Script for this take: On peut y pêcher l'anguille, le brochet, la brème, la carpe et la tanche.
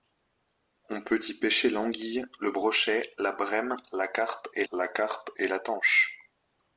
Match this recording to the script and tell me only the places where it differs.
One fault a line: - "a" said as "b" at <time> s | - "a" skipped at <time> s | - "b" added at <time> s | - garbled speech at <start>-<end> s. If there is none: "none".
- "carpe et la" added at 4.9 s